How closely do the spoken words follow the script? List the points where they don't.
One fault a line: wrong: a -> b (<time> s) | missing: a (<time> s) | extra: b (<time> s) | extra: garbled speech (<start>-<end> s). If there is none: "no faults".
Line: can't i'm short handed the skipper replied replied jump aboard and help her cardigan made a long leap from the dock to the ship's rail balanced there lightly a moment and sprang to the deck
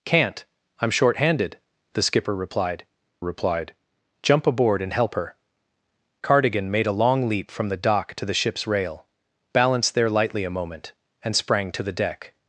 no faults